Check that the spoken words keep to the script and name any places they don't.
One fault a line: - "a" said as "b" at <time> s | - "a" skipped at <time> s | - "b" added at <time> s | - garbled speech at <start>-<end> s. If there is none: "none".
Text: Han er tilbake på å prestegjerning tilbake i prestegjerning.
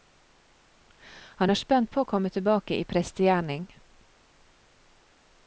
- "tilbake" said as "spent" at 1.6 s
- "prestegjerning" said as "komme" at 2.1 s